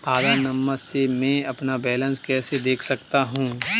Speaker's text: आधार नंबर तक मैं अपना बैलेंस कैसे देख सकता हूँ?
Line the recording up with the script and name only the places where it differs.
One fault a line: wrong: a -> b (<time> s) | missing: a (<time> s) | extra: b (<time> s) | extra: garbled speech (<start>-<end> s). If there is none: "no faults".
wrong: तक -> से (0.8 s)